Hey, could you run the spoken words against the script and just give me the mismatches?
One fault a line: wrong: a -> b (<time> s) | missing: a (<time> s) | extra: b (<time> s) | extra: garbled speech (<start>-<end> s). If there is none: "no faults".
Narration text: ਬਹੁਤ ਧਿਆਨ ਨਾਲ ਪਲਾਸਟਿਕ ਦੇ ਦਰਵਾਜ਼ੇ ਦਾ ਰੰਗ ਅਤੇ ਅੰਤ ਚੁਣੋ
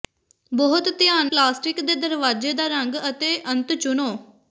missing: ਨਾਲ (1.3 s)